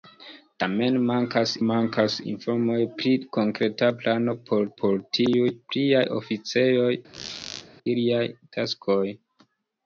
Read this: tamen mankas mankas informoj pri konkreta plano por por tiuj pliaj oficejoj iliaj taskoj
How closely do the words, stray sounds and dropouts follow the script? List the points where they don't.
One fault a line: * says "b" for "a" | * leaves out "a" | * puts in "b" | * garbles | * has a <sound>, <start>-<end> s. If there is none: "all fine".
* has a squeak, 7.1-7.7 s